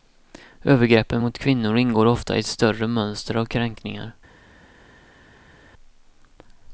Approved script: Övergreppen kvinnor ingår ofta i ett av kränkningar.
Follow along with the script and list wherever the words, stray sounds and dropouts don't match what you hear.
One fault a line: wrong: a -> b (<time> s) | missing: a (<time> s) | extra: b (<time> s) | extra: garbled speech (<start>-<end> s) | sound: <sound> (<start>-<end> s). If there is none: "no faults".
extra: mot (1.2 s)
extra: större mönster (2.5 s)